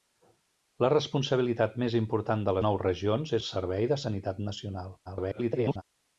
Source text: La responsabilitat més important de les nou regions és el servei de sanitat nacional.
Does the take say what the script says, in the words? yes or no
no